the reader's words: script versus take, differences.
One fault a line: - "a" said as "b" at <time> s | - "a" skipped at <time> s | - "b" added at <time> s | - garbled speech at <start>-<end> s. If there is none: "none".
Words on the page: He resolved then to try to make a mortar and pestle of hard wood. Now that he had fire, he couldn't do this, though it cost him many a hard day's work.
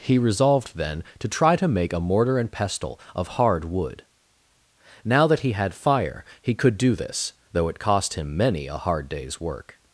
- "couldn't" said as "could" at 6.5 s